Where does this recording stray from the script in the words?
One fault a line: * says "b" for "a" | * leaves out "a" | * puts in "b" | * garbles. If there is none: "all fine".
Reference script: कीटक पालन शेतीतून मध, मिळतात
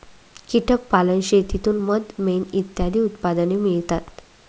* puts in "मेण इत्यादी उत्पादने"